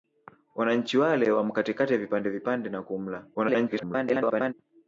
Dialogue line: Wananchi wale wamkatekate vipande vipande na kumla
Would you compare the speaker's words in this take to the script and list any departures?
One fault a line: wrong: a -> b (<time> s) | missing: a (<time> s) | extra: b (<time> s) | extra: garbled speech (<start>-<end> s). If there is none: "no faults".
extra: garbled speech (3.3-4.5 s)